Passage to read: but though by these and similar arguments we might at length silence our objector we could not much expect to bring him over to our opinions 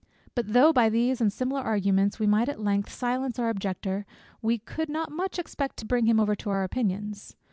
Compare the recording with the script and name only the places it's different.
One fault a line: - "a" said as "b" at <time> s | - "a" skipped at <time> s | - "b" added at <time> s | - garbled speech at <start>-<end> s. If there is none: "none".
none